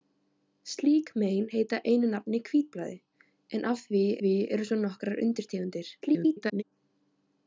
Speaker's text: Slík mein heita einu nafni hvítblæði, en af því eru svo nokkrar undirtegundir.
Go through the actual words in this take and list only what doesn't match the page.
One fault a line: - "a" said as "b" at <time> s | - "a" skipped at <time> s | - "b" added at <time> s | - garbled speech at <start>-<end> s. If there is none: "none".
- "því" added at 4.2 s
- garbled speech at 6.0-6.6 s